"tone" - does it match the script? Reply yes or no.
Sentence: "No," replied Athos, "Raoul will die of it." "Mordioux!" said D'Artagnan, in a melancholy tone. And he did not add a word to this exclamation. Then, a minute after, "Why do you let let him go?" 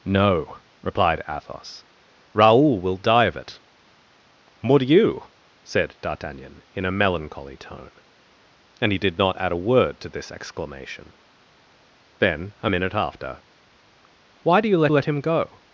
yes